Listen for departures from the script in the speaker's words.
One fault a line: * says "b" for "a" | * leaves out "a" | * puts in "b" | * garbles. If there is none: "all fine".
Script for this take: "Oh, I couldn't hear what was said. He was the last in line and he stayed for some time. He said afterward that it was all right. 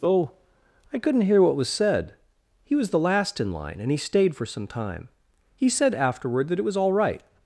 all fine